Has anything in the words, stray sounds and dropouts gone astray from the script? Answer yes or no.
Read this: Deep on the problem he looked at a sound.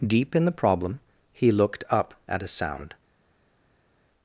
yes